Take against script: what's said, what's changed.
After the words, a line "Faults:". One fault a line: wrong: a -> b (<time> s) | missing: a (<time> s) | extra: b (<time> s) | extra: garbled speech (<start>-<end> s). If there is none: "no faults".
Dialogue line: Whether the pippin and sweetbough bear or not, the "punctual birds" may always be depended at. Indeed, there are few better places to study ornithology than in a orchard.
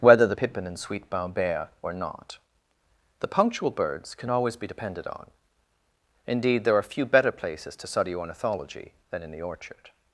Whether the pippin and sweetbough bear or not, the "punctual birds" can always be depended on. Indeed, there are few better places to study ornithology than in the orchard.
Faults:
wrong: may -> can (4.1 s)
wrong: at -> on (5.1 s)
wrong: a -> the (9.3 s)